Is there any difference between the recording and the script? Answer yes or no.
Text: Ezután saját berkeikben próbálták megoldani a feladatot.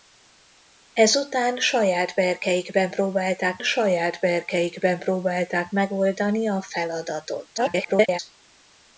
yes